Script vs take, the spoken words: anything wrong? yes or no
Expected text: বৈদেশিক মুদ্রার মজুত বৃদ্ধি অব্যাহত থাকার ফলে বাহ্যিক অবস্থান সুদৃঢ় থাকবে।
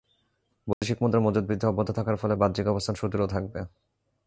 no